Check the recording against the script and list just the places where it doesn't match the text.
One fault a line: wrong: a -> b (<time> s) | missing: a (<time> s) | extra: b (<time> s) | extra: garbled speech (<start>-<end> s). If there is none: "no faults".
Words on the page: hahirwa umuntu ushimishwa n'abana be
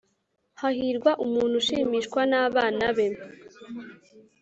no faults